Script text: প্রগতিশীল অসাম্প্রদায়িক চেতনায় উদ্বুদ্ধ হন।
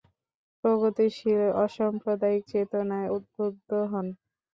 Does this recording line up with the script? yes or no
yes